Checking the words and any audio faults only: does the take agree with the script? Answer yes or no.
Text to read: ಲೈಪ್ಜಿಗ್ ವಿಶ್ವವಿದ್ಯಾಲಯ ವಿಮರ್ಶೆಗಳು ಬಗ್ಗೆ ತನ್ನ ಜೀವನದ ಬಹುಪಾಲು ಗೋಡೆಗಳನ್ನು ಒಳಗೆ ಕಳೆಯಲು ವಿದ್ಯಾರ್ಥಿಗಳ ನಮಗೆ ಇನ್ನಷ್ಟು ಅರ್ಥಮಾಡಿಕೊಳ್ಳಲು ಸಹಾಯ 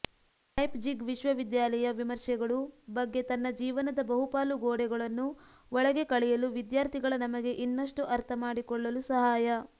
yes